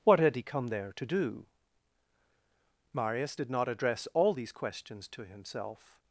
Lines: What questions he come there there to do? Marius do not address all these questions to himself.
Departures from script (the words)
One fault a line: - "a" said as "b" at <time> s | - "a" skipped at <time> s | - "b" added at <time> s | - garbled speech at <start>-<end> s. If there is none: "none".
- "questions" said as "had" at 0.2 s
- "there" skipped at 0.9 s
- "do" said as "did" at 3.3 s